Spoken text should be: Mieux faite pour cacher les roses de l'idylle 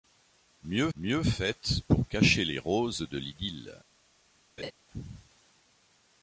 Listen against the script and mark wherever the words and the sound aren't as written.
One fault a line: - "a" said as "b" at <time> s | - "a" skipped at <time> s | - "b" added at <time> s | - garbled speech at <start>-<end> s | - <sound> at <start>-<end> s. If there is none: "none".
- "mieux" added at 1.0 s
- laugh at 4.6-4.7 s